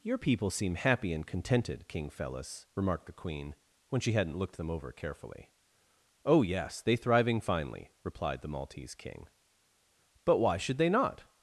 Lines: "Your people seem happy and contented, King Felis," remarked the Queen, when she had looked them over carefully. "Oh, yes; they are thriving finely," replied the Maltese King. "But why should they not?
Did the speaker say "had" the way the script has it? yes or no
no